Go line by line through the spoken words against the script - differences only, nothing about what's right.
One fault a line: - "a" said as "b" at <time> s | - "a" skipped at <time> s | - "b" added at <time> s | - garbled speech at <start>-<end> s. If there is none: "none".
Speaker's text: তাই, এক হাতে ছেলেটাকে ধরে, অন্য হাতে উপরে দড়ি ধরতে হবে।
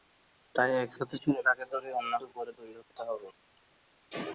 - "হাতে" skipped at 2.1 s